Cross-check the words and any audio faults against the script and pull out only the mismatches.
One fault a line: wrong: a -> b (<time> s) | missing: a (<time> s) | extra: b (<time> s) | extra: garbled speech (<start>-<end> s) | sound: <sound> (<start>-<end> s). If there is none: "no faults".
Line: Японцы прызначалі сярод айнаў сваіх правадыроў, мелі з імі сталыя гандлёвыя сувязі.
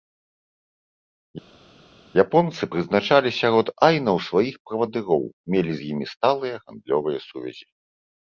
no faults